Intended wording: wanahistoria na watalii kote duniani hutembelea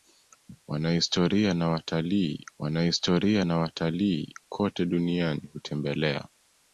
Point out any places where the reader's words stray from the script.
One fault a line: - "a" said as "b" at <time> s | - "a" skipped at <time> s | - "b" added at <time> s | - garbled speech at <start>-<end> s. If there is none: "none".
- "wanahistoria na watalii" added at 2.6 s